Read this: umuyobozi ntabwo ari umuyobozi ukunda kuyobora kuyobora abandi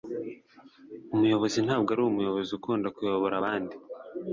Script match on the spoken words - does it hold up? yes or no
no